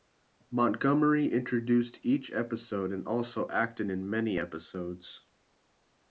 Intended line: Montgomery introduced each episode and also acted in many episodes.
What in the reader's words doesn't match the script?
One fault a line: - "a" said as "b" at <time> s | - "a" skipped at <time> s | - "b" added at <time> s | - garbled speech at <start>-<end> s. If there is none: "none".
none